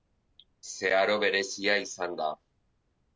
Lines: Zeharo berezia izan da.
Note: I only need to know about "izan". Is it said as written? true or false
true